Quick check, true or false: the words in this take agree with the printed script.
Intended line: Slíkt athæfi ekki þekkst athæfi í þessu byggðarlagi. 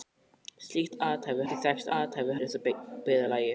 true